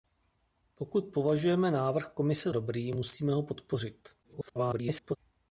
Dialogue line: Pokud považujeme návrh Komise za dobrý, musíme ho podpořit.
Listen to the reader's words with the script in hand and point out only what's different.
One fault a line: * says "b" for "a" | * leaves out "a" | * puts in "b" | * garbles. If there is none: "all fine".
* leaves out "za"
* garbles